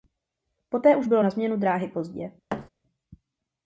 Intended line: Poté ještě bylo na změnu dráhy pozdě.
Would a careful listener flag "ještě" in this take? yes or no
yes